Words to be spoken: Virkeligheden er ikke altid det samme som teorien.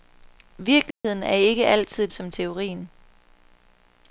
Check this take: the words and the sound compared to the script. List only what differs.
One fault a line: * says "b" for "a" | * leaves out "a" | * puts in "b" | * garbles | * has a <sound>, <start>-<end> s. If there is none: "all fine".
* has a dropout, 0.9-1.0 s
* leaves out "det samme"